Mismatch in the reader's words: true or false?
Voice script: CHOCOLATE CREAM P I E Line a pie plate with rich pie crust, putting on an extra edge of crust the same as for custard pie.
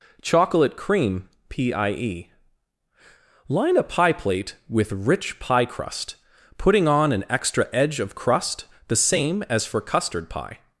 false